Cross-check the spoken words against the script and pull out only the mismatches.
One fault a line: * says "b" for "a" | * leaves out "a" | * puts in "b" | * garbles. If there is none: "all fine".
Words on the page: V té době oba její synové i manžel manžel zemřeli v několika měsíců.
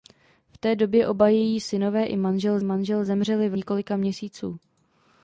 all fine